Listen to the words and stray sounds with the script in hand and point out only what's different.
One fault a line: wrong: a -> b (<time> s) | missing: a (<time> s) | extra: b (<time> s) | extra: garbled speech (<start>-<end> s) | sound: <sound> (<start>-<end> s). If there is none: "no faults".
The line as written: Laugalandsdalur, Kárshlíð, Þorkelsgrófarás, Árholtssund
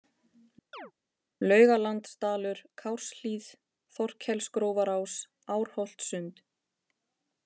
sound: chirp (0.7-0.9 s)